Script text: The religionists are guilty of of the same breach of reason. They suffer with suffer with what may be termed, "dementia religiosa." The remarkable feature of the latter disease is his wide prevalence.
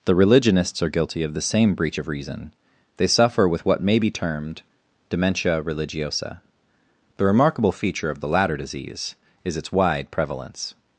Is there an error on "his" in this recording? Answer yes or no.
yes